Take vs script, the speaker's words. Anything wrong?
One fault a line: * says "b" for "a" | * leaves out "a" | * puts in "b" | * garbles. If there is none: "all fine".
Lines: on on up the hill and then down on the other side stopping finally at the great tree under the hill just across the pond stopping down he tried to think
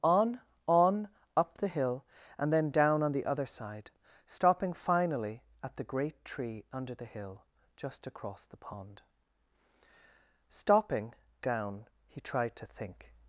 all fine